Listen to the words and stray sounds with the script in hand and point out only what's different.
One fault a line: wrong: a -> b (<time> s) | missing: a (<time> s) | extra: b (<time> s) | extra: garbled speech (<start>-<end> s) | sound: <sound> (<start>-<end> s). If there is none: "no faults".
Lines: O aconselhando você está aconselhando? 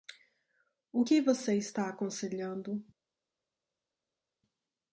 wrong: aconselhando -> que (1.0 s)